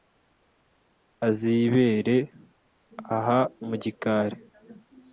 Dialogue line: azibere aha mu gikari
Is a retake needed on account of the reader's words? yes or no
no